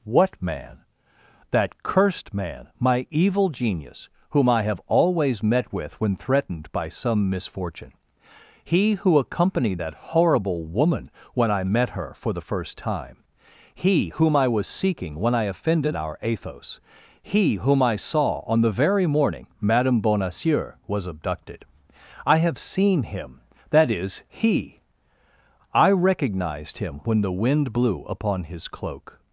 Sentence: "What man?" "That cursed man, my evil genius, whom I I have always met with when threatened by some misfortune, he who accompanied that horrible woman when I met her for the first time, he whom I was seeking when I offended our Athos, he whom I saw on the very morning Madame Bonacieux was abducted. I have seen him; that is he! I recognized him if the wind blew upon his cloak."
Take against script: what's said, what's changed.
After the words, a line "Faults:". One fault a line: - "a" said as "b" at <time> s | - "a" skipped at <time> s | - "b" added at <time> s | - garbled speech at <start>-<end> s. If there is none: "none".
"What man?" "That cursed man, my evil genius, whom I have always met with when threatened by some misfortune, he who accompanied that horrible woman when I met her for the first time, he whom I was seeking when I offended our Athos, he whom I saw on the very morning Madame Bonacieux was abducted. I have seen him; that is he! I recognized him when the wind blew upon his cloak."
Faults:
- "I" skipped at 4.6 s
- "if" said as "when" at 27.0 s